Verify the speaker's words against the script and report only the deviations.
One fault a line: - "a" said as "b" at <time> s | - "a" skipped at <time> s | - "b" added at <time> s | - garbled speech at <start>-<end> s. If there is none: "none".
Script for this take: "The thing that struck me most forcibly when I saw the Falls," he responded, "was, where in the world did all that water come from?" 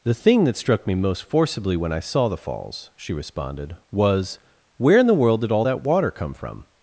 - "he" said as "she" at 3.0 s